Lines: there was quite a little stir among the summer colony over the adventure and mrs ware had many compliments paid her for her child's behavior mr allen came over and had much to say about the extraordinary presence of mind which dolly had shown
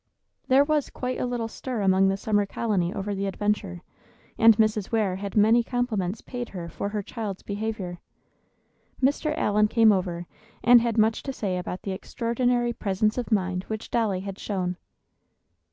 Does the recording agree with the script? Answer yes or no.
yes